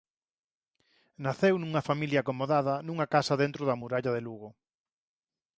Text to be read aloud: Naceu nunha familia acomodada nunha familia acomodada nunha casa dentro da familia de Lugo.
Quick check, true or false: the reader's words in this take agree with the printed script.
false